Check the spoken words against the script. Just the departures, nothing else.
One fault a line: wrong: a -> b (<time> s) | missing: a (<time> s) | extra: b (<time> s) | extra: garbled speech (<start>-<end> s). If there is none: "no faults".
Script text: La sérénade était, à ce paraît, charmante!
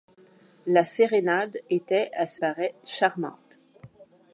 no faults